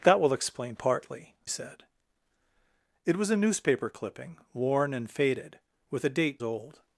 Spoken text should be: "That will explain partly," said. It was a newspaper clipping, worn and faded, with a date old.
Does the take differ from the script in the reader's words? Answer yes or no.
no